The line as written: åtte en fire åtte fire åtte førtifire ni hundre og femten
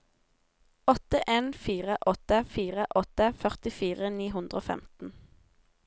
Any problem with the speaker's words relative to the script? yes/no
no